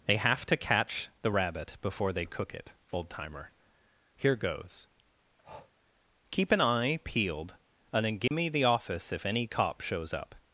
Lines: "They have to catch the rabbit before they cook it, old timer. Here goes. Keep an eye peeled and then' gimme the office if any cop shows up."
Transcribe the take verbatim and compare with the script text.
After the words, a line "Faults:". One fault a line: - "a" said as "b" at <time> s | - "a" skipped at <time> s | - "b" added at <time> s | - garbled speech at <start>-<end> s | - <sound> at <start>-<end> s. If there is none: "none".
"They have to catch the rabbit before they cook it, old timer. Here goes. Keep an eye peeled and then' gimme the office if any cop shows up."
Faults:
- breath at 5.4-5.7 s
- dropout at 8.3-8.3 s